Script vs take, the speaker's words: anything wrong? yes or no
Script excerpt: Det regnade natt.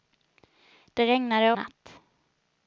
no